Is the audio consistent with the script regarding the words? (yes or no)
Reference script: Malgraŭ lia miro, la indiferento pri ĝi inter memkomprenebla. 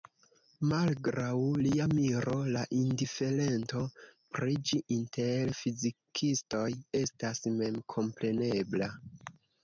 no